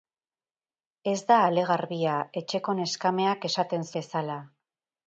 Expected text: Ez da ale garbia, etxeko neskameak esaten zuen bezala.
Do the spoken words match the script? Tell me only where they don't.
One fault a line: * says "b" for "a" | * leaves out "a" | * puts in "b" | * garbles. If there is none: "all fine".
* leaves out "zuen"